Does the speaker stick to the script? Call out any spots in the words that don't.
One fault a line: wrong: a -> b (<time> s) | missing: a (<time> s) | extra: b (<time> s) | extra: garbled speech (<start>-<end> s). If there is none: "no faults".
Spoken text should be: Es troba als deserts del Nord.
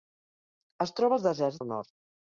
no faults